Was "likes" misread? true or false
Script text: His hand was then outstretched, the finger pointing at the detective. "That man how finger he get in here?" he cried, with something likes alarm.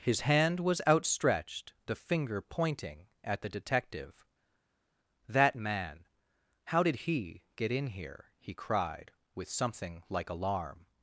true